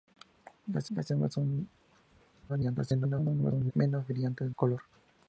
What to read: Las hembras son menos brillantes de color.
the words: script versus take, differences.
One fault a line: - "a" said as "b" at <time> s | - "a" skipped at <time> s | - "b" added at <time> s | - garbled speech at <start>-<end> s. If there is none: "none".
- "las" added at 1.0 s
- garbled speech at 2.5-3.7 s
- "de" skipped at 4.5 s